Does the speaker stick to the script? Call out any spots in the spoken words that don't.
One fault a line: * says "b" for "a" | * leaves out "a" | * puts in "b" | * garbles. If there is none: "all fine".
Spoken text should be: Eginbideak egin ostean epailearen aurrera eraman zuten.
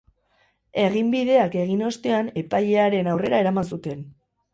all fine